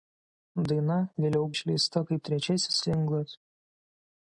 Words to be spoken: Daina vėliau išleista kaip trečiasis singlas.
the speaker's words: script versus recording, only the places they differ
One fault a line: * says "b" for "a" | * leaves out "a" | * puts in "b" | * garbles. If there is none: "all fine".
all fine